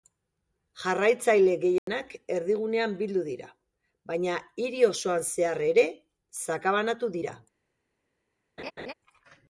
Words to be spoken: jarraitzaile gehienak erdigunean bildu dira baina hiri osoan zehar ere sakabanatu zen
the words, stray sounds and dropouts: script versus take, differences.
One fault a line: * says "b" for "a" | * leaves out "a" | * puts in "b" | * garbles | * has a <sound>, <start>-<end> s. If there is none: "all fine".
* has a dropout, 1.8-1.9 s
* says "dira" for "zen"
* has a laugh, 8.6-8.9 s